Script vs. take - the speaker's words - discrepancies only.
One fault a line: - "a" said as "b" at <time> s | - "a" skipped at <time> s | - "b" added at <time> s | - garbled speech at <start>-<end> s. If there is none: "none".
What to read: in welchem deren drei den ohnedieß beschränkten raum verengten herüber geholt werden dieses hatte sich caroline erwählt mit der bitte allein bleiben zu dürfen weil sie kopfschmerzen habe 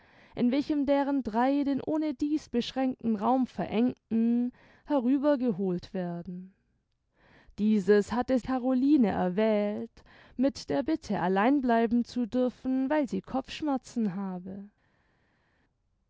- "sich" skipped at 8.4 s